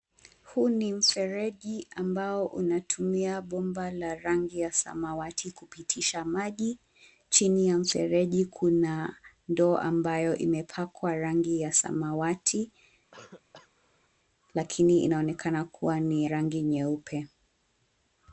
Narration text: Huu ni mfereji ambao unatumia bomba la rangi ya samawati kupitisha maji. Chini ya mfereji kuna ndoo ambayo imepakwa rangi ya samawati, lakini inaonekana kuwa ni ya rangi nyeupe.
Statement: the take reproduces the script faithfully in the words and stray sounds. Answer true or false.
false